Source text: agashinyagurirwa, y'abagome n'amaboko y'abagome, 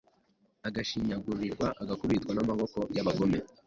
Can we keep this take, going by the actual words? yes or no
no